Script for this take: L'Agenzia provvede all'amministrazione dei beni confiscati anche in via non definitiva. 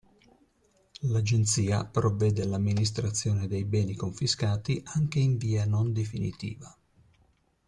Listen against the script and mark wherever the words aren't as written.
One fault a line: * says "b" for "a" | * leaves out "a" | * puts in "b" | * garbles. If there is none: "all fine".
all fine